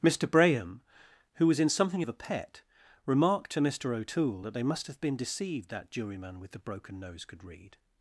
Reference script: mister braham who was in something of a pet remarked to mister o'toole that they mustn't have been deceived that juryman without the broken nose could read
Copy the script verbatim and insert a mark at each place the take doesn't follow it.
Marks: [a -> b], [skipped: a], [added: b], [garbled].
mister braham who was in something of a pet remarked to mister o'toole that they [mustn't -> must] have been deceived that juryman [without -> with] the broken nose could read